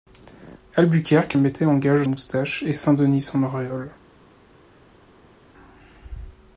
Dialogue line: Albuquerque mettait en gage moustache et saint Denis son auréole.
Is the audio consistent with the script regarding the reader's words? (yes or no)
yes